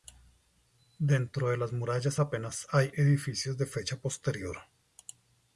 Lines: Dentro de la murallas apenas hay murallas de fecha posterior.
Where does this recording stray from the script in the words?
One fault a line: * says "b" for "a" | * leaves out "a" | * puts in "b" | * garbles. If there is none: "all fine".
* says "las" for "la"
* says "edificios" for "murallas"